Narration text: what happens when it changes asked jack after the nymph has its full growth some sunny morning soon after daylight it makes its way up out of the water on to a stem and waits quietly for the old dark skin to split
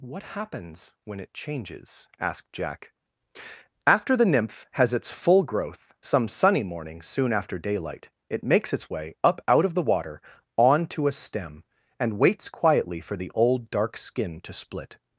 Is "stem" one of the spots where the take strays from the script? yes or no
no